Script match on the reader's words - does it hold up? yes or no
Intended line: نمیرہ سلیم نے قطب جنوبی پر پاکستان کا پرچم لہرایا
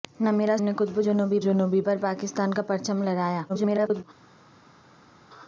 no